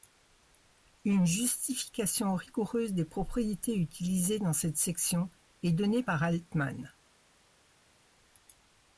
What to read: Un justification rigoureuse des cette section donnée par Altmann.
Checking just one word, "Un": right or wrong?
wrong